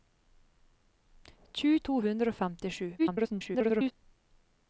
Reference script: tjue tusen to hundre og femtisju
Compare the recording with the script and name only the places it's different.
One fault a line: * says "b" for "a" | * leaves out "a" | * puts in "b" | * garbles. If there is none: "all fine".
* leaves out "tusen"
* garbles